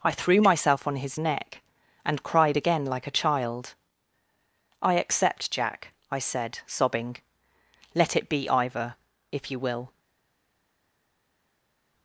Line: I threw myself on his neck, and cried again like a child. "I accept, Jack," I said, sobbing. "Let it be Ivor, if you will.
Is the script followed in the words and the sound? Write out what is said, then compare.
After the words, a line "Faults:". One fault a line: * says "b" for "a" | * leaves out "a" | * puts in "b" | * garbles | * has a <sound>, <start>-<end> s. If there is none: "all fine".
I threw myself on his neck, and cried again like a child. "I accept, Jack," I said, sobbing. "Let it be Ivor, if you will.
Faults:
all fine